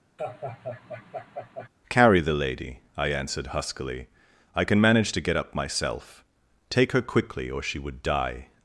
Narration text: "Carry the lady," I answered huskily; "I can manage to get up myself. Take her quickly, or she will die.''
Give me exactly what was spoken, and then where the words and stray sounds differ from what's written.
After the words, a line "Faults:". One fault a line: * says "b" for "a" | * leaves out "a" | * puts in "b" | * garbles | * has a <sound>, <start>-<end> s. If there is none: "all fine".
"Carry the lady," I answered huskily; "I can manage to get up myself. Take her quickly, or she would die.''
Faults:
* has a laugh, 0.2-1.7 s
* says "would" for "will"